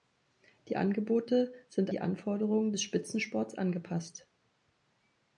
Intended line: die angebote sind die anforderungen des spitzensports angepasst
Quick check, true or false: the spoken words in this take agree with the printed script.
true